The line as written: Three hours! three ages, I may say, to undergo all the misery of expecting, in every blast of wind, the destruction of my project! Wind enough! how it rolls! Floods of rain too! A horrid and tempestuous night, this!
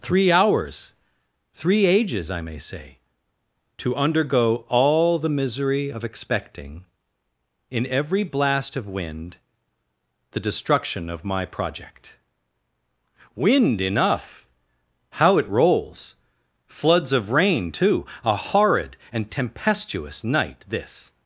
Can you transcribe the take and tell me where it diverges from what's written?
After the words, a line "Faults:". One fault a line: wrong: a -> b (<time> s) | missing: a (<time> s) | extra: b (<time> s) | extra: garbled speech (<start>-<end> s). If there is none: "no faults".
Three hours! three ages, I may say, to undergo all the misery of expecting, in every blast of wind, the destruction of my project! Wind enough! how it rolls! Floods of rain too! A horrid and tempestuous night, this!
Faults:
no faults